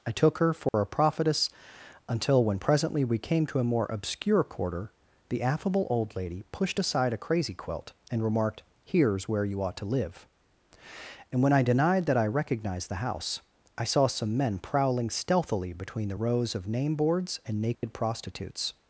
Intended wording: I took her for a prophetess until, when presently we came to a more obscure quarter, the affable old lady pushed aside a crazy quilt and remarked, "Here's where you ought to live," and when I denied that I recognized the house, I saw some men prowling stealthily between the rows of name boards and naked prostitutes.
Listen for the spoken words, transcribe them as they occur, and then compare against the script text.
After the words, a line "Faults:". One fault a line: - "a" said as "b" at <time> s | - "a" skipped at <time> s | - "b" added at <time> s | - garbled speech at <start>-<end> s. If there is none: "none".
I took her for a prophetess until, when presently we came to a more obscure quarter, the affable old lady pushed aside a crazy quilt and remarked, "Here's where you ought to live," and when I denied that I recognized the house, I saw some men prowling stealthily between the rows of name boards and naked prostitutes.
Faults:
none